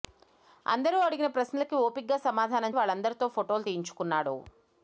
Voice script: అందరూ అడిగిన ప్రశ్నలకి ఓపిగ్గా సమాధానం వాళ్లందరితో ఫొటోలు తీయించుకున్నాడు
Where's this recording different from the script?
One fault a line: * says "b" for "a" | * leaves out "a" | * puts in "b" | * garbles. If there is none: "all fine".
all fine